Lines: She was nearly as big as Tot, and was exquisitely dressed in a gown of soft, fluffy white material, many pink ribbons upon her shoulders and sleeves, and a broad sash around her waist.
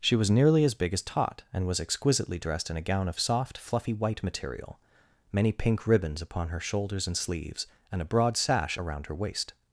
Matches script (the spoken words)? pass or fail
pass